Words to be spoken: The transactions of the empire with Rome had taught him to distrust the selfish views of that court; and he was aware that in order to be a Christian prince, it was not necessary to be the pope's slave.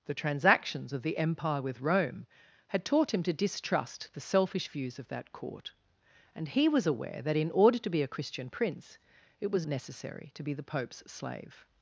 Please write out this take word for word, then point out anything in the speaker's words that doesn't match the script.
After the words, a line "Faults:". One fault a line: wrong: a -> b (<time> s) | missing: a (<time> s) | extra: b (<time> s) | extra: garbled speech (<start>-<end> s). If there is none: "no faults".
The transactions of the empire with Rome had taught him to distrust the selfish views of that court; and he was aware that in order to be a Christian prince, it was necessary to be the pope's slave.
Faults:
missing: not (9.7 s)